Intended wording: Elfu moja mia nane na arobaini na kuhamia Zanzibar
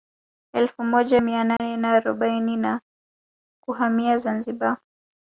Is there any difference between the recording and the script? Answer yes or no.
no